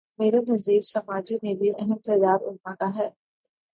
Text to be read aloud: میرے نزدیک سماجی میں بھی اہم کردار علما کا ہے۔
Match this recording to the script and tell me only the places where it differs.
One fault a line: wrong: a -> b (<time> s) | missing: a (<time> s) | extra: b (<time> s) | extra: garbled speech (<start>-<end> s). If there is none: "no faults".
no faults